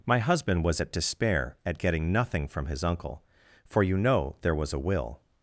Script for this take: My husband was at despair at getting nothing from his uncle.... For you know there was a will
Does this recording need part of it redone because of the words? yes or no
no